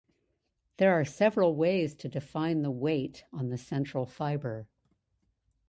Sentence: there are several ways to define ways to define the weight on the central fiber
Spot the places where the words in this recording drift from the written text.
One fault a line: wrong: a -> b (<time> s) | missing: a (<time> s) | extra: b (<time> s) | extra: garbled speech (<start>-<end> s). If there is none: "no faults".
missing: ways to define (2.6 s)